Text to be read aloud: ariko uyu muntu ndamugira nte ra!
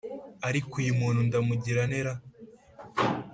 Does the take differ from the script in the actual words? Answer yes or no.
no